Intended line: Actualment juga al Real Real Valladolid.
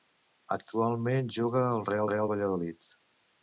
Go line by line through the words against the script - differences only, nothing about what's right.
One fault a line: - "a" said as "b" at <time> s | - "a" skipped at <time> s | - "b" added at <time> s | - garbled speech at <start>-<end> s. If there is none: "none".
none